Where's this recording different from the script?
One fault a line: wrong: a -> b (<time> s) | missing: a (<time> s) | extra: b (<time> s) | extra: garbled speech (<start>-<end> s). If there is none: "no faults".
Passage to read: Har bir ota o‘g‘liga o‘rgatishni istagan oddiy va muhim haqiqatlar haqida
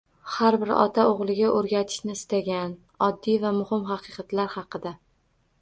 no faults